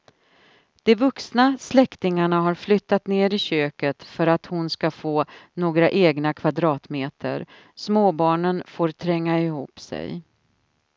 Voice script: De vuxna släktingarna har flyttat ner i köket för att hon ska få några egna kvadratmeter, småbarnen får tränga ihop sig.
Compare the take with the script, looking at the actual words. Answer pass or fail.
pass